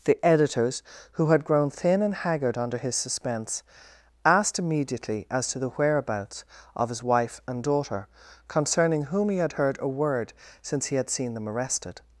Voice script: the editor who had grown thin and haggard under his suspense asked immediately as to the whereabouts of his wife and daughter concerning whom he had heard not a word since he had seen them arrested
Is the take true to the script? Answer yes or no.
no